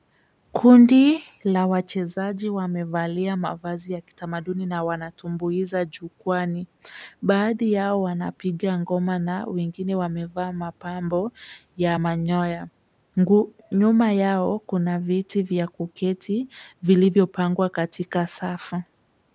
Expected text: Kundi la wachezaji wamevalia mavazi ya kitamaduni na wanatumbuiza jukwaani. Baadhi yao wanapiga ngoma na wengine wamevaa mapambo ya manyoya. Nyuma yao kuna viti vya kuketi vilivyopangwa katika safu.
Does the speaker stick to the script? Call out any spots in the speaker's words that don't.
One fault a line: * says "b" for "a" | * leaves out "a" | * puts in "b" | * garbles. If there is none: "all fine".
all fine